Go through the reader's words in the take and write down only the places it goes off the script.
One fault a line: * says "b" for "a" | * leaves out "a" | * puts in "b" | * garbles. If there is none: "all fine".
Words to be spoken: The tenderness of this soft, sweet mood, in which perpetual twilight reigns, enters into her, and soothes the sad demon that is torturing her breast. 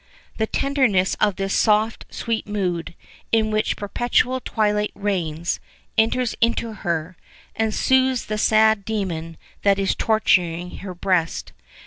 all fine